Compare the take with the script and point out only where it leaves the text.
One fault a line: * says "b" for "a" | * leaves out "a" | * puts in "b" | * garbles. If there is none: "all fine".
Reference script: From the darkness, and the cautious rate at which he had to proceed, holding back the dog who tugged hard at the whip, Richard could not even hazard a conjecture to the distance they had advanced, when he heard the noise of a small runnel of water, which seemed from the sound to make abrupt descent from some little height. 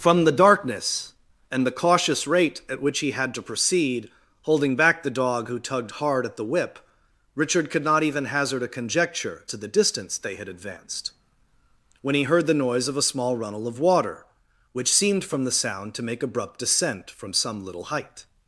all fine